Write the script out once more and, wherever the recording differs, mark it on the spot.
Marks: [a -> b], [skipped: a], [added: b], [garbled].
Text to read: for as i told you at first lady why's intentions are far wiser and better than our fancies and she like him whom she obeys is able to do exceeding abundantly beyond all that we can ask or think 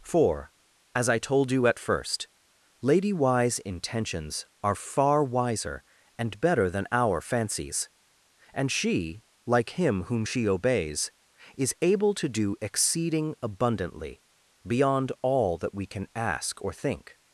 for as i told you at first lady why's intentions are far wiser and better than our fancies and she like him whom she obeys is able to do exceeding abundantly beyond all that we can ask or think